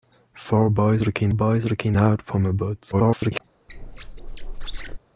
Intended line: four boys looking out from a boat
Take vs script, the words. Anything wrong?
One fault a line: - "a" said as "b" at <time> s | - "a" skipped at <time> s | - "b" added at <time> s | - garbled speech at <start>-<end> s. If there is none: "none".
- "boys looking" added at 1.3 s
- garbled speech at 2.9-3.4 s